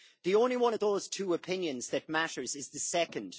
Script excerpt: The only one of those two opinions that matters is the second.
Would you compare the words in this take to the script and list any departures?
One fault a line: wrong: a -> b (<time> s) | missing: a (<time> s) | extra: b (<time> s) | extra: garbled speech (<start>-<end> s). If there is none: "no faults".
no faults